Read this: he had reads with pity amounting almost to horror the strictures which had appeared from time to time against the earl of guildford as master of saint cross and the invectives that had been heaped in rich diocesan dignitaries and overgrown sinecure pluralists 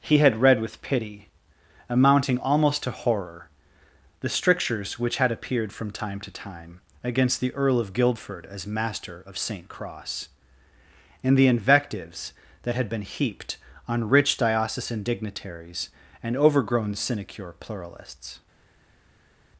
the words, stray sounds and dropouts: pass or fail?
fail